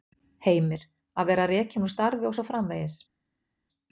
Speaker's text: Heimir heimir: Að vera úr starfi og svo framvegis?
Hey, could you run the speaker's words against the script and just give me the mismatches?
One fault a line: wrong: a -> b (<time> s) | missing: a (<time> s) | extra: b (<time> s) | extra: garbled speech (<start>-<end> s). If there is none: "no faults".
missing: heimir (0.8 s)
extra: rekinn (1.5 s)